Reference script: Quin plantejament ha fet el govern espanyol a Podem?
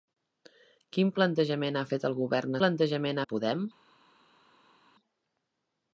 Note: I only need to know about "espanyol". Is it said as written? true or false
false